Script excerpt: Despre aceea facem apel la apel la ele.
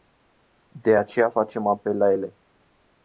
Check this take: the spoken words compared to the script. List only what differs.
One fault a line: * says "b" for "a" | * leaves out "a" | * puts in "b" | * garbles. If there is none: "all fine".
* says "De" for "Despre"
* leaves out "apel la"